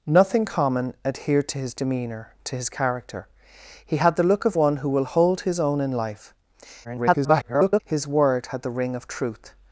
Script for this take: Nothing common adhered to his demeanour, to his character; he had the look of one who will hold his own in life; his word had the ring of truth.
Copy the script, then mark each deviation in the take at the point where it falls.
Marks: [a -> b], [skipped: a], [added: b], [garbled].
Nothing common adhered to his demeanour, to his character; he had the look of one who will hold his own in life; [garbled] his word had the ring of truth.